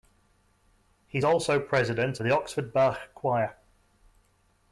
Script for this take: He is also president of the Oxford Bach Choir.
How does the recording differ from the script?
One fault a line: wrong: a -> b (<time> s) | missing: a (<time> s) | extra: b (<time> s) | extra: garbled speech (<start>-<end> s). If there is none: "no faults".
missing: is (1.2 s)
missing: of (2.2 s)